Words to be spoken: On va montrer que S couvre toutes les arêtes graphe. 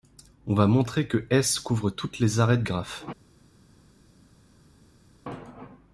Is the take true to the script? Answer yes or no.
yes